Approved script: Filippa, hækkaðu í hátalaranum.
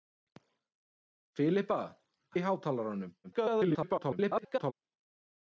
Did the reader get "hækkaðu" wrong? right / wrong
wrong